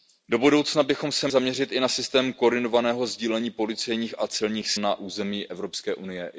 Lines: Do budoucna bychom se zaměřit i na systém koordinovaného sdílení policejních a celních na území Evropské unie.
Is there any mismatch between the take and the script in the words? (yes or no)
no